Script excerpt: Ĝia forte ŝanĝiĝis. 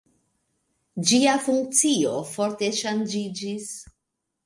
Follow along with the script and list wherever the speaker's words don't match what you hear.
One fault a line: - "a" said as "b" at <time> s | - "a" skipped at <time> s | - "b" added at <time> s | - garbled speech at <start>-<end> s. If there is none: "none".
- "funkcio" added at 1.5 s